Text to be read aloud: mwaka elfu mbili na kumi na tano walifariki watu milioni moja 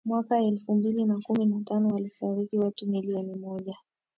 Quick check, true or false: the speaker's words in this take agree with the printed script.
true